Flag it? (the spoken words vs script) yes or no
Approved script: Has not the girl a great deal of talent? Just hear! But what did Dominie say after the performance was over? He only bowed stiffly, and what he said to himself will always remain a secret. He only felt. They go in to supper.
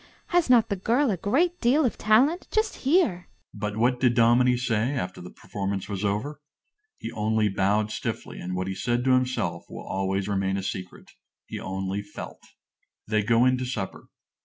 no